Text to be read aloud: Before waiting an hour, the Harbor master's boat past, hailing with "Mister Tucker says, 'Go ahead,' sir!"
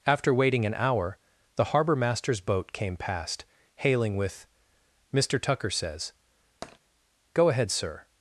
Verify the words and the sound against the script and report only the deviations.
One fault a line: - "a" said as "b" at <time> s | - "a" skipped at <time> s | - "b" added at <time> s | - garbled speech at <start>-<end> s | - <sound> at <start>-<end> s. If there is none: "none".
- "Before" said as "After" at 0.1 s
- "came" added at 2.7 s
- tap at 6.6-6.8 s